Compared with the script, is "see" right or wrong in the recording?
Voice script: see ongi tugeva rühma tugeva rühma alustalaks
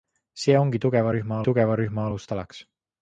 right